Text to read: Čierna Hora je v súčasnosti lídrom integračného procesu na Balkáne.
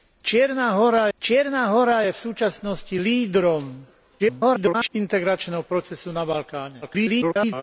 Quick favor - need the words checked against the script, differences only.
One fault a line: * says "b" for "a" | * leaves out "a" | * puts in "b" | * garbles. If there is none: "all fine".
* puts in "čierna Hora"
* garbles
* garbles